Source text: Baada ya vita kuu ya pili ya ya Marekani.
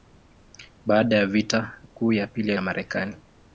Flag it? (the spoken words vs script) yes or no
no